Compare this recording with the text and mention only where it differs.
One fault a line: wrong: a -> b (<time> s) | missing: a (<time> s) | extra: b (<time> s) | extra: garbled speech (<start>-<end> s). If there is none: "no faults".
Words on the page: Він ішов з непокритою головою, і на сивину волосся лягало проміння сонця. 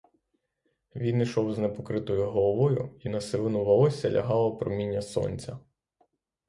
no faults